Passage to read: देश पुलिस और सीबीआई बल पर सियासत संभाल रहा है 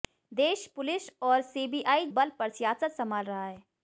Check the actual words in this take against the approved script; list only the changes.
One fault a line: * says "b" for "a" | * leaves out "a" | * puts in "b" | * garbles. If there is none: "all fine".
all fine